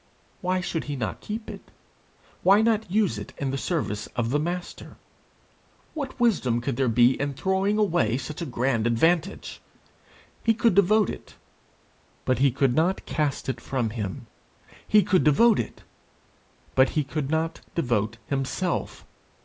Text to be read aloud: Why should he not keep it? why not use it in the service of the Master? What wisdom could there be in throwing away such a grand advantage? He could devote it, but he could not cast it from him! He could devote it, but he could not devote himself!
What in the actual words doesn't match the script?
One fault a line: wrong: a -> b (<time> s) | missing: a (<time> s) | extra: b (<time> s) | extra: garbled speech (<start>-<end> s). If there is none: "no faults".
no faults